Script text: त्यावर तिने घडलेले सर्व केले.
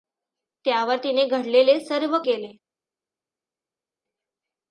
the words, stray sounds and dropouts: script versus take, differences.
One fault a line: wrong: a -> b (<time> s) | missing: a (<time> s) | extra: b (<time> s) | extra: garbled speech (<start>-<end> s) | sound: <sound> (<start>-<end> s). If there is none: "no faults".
no faults